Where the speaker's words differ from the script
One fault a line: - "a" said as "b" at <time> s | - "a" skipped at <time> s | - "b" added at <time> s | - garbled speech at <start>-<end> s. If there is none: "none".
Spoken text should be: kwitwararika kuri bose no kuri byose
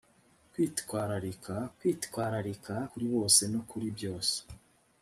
- "kwitwararika" added at 1.8 s